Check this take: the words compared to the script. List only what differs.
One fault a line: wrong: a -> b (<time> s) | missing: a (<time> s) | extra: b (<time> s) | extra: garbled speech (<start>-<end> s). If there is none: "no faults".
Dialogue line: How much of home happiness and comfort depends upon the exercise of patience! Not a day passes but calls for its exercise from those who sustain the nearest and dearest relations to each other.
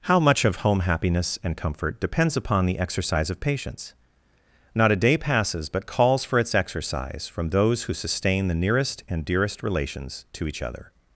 no faults